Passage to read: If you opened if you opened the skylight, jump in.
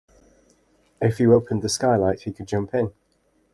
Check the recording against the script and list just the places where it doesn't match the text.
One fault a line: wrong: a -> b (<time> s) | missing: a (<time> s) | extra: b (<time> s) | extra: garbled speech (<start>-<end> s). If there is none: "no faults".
wrong: if you opened the skylight -> the skylight he could (1.6 s)